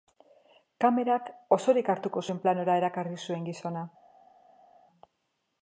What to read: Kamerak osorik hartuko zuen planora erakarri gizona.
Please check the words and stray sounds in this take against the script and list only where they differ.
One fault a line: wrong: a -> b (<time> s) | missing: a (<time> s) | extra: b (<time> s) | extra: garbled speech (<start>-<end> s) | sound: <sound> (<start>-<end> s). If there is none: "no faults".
extra: zuen (3.3 s)